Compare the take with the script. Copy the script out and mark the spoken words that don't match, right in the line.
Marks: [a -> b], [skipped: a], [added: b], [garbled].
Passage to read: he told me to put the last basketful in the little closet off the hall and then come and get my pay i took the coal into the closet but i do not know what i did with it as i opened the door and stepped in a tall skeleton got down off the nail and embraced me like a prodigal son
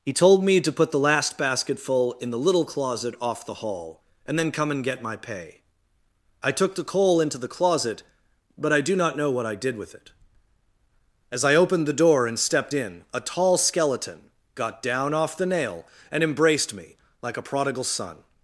he told me to put the last basketful in the little closet off the hall and then come and get my pay i took the coal into the closet but i do not know what i did with it as i opened the door and stepped in a tall skeleton got down off the nail and embraced me like a prodigal son